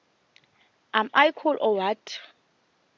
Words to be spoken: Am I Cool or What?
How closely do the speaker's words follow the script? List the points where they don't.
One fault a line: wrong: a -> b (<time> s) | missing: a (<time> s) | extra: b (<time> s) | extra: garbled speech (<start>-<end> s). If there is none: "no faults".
no faults